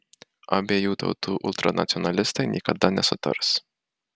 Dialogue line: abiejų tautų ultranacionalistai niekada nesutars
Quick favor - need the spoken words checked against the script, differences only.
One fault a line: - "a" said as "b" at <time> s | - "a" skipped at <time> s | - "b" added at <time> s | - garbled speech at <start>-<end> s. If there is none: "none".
none